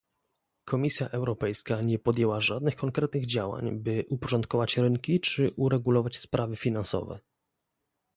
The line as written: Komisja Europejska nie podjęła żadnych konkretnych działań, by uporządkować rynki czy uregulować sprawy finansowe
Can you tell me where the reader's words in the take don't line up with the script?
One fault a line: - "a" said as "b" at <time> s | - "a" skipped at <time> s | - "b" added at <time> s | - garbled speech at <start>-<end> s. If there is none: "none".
none